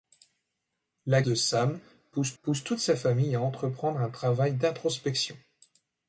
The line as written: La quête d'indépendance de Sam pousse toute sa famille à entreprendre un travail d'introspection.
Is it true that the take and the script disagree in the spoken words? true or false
true